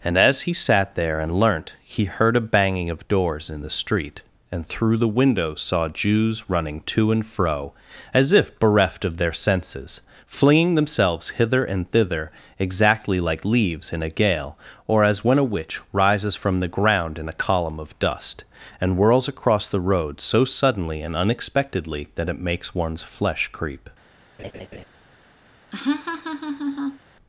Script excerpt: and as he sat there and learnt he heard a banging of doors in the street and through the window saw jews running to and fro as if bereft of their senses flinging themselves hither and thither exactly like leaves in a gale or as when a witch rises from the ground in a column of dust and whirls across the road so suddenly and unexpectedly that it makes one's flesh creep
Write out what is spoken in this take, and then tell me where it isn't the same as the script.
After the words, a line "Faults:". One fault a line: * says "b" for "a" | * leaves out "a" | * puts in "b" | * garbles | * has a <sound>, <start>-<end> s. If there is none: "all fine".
and as he sat there and learnt he heard a banging of doors in the street and through the window saw jews running to and fro as if bereft of their senses flinging themselves hither and thither exactly like leaves in a gale or as when a witch rises from the ground in a column of dust and whirls across the road so suddenly and unexpectedly that it makes one's flesh creep
Faults:
* has a laugh, 24.4-24.9 s
* has a laugh, 25.7-27.0 s